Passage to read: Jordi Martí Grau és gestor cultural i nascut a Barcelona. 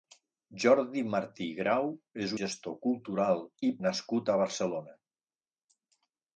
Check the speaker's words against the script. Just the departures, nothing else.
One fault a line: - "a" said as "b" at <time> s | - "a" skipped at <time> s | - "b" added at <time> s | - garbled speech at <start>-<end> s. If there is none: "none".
none